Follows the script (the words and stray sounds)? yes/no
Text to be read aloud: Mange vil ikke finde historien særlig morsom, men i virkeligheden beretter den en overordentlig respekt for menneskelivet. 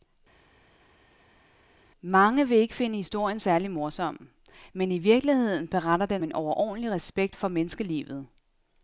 yes